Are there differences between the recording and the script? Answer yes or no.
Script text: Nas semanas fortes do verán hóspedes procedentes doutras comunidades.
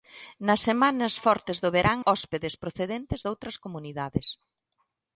no